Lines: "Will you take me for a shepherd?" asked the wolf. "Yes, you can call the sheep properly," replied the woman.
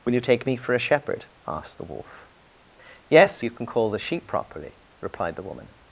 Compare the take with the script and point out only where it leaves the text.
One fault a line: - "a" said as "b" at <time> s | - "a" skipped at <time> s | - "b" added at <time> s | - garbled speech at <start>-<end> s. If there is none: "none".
none